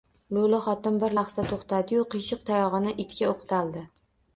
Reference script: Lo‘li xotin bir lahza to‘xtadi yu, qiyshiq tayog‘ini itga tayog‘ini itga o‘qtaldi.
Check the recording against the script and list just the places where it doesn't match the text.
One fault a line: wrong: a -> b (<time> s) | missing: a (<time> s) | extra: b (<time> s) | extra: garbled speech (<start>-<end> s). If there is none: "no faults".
missing: tayog‘ini itga (3.3 s)